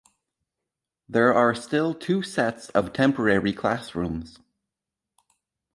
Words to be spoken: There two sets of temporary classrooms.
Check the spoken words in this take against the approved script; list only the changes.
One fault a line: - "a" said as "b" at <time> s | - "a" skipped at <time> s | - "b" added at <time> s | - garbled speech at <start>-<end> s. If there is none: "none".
- "are still" added at 1.3 s